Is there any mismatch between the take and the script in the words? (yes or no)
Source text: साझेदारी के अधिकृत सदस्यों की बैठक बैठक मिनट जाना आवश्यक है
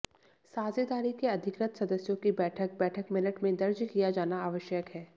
yes